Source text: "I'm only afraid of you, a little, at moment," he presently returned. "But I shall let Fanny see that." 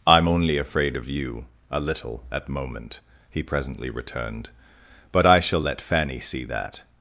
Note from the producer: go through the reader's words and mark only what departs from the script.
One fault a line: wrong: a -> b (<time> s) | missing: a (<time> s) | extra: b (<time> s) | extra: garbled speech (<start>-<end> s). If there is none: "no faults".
no faults